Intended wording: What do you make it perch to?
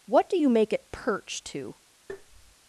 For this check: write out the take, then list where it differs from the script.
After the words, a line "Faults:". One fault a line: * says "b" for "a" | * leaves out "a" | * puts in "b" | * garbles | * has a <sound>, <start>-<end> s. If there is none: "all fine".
What do you make it perch to?
Faults:
* has a tap, 2.1-2.6 s